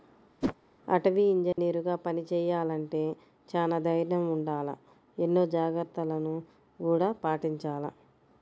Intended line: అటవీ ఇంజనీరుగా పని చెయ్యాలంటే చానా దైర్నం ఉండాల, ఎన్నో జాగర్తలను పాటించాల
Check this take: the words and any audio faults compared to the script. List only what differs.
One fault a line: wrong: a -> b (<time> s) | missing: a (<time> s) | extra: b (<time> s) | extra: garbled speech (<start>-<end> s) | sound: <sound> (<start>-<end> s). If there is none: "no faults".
sound: whoosh (0.4-0.6 s)
sound: dropout (1.5-1.6 s)
extra: గూడా (6.8 s)